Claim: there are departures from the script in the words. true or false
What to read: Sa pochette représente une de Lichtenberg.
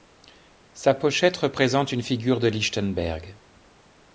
true